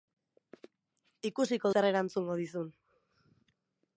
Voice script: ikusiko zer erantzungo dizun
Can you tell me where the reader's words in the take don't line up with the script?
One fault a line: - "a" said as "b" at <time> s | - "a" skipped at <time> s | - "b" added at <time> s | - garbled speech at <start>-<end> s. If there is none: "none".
none